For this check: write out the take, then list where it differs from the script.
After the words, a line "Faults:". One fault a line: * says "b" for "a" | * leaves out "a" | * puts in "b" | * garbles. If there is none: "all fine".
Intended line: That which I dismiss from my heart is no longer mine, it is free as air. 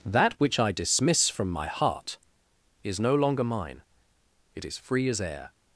That which I dismiss from my heart is no longer mine, it is free as air.
Faults:
all fine